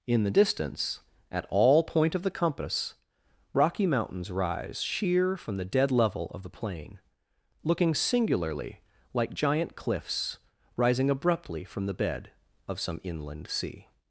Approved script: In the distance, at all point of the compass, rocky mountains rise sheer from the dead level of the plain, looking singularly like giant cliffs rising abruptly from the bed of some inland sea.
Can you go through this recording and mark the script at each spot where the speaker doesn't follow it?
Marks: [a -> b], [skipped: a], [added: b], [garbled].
In the distance, at all point of the compass, rocky mountains rise sheer from the dead level of the plain, looking singularly like giant cliffs rising abruptly from the bed of some inland sea.